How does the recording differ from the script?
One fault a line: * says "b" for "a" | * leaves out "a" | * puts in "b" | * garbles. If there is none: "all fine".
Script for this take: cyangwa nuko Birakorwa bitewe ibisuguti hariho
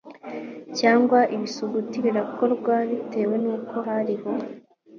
* says "ibisuguti" for "nuko"
* says "nuko" for "ibisuguti"